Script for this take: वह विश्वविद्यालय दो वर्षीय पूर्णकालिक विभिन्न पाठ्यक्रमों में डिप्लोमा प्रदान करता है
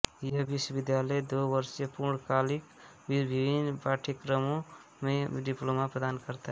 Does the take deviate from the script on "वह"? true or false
true